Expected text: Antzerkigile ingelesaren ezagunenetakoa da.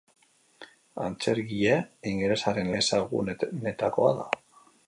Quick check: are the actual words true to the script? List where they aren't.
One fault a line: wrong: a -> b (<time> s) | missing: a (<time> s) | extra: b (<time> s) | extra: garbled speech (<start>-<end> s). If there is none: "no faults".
no faults